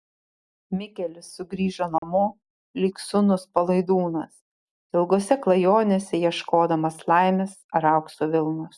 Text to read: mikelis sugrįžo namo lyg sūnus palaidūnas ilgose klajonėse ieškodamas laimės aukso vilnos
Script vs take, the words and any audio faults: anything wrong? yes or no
yes